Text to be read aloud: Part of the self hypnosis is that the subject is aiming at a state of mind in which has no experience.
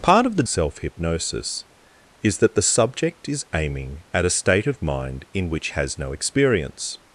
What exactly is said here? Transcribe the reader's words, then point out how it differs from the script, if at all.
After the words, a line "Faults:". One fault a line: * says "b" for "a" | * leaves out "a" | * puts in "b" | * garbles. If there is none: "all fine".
Part of the self hypnosis is that the subject is aiming at a state of mind in which has no experience.
Faults:
all fine